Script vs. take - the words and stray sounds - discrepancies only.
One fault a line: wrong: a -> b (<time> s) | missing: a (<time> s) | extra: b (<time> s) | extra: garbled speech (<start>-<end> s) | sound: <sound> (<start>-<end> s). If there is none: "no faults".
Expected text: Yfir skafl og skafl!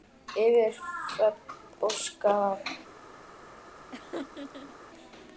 wrong: skafl -> hrönn (1.1 s)
sound: laugh (3.9-4.8 s)